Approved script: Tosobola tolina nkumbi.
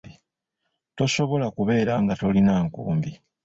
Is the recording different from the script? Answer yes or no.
yes